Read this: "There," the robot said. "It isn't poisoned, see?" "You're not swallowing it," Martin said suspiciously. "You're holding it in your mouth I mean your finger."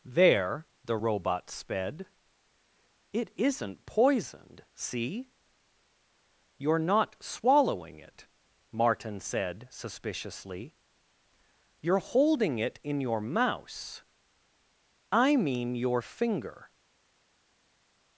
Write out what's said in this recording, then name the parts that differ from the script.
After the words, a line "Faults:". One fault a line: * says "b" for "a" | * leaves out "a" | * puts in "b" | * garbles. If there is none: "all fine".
"There," the robot sped. "It isn't poisoned, see?" "You're not swallowing it," Martin said suspiciously. "You're holding it in your mouse I mean your finger."
Faults:
* says "sped" for "said"
* says "mouse" for "mouth"